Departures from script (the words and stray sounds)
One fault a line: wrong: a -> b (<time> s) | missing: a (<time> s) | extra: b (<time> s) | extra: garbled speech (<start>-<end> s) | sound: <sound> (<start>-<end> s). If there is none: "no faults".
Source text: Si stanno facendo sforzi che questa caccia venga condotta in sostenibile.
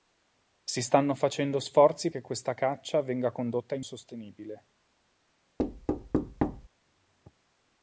sound: thud (5.6-6.7 s)